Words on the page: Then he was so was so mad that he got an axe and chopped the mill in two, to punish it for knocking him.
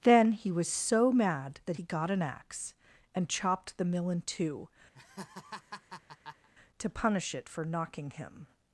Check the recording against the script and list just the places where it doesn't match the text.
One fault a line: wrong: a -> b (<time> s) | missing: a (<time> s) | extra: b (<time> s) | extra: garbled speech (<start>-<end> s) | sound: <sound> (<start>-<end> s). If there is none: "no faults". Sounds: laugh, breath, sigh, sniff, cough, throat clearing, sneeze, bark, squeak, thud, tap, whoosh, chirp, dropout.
missing: was so (1.1 s)
sound: laugh (4.9-6.5 s)